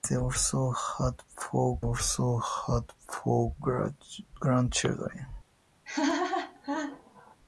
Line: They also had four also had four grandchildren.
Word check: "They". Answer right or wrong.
right